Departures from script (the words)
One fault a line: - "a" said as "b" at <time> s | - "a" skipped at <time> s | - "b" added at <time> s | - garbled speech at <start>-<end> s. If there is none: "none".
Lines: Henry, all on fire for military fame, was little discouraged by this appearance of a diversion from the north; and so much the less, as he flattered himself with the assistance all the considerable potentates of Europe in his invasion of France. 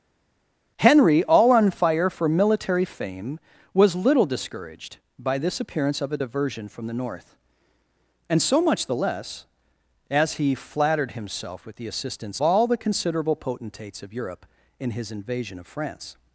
none